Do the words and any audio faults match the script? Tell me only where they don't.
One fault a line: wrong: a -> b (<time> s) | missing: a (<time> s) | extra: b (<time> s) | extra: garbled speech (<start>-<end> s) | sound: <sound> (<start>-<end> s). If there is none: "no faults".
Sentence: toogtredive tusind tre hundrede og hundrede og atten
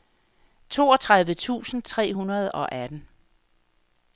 missing: hundrede og (2.7 s)